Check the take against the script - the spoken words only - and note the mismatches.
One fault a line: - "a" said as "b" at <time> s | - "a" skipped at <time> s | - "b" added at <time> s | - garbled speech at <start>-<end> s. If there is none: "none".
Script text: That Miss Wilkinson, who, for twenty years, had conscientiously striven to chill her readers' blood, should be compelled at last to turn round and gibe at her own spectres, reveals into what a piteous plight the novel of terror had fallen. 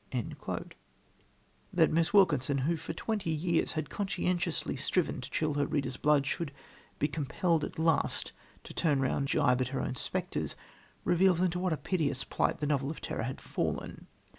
- "and" skipped at 9.3 s